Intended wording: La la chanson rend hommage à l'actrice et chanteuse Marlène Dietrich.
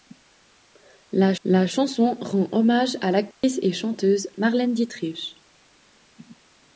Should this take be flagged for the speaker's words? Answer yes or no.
no